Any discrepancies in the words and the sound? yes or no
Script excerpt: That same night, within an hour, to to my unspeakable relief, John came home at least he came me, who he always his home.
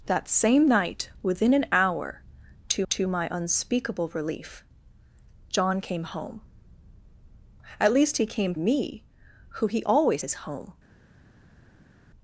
no